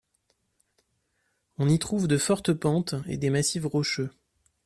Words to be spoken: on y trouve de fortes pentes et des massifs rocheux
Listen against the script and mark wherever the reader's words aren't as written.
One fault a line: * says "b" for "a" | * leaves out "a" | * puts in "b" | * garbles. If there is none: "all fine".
all fine